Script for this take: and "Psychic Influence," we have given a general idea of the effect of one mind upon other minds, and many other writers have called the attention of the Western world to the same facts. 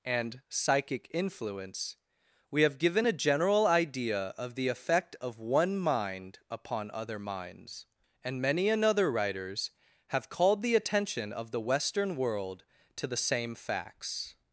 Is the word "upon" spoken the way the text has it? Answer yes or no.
yes